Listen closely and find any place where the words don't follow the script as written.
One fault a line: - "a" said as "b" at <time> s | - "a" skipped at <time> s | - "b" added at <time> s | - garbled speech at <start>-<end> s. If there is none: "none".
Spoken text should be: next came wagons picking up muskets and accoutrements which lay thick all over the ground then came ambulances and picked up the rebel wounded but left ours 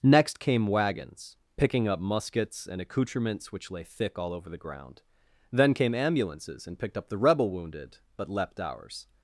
- "left" said as "leapt" at 8.3 s